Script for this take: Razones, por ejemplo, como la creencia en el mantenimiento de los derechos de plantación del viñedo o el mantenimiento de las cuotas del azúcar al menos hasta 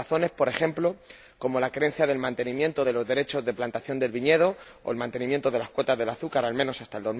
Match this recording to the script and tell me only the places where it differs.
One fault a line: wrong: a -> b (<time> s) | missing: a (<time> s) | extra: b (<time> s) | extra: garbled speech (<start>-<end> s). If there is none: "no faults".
no faults